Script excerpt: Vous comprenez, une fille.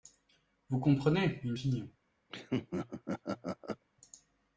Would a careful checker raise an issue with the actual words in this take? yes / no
no